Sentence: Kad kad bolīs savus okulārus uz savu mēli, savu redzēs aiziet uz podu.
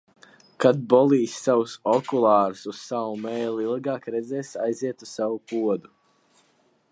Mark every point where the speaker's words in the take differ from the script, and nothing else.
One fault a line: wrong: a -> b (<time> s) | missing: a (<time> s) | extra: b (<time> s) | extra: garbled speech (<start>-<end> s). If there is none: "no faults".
missing: kad (0.8 s)
wrong: savu -> ilgāk (3.7 s)
extra: savu (5.2 s)